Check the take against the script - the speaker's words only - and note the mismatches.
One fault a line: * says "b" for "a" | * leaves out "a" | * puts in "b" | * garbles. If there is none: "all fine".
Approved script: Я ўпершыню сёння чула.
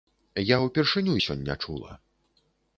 all fine